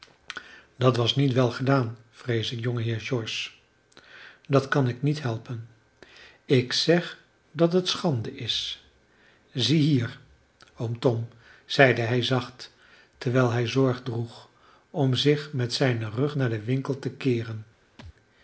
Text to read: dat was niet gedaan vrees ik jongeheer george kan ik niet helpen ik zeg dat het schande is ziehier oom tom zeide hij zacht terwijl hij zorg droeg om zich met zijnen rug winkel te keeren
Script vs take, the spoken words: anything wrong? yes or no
yes